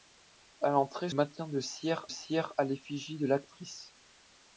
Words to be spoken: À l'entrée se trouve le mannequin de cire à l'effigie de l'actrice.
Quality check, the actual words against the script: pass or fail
fail